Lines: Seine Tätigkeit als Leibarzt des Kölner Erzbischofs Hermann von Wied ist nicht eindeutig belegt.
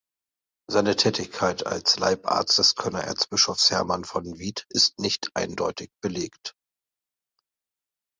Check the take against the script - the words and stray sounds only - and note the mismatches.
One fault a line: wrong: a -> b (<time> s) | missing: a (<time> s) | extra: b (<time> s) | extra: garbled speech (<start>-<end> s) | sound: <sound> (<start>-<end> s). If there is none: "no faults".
no faults